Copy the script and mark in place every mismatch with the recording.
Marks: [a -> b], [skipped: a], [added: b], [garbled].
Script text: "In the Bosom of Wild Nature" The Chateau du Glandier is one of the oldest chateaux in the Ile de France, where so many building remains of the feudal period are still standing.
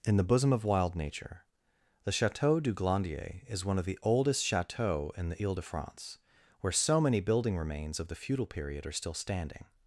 "In the Bosom of Wild Nature" The Chateau du Glandier is one of the oldest chateaux in the Ile de France, where so many building remains of the feudal period are still standing.